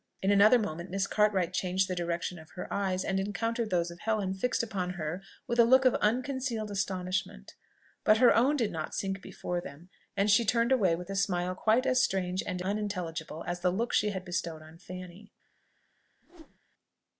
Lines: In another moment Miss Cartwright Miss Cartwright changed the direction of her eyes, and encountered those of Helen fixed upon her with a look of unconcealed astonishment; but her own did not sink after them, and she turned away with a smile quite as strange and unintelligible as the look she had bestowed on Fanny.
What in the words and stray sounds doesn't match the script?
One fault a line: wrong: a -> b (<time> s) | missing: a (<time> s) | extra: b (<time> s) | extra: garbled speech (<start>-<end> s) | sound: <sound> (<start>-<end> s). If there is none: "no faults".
missing: Miss Cartwright (1.5 s)
wrong: after -> before (9.2 s)
sound: whoosh (16.2-16.6 s)